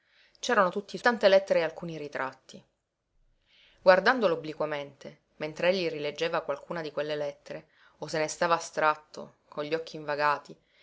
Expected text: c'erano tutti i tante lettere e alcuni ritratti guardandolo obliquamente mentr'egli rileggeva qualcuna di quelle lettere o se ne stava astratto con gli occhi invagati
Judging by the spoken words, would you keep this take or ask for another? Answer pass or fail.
pass